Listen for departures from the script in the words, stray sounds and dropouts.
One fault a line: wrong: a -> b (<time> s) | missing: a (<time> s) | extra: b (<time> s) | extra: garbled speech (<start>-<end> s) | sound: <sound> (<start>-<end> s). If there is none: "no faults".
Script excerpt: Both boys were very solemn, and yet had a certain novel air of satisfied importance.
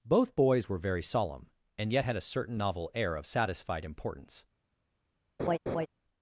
sound: laugh (5.4-5.9 s)